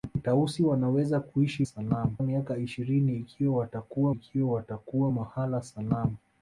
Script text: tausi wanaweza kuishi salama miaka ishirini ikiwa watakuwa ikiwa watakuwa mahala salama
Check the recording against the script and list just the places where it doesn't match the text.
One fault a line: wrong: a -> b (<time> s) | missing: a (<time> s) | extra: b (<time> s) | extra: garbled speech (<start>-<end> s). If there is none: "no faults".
no faults